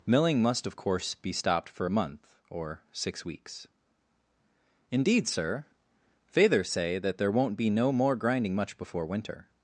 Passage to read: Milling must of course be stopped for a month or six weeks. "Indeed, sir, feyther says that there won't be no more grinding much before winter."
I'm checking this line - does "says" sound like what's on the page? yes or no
no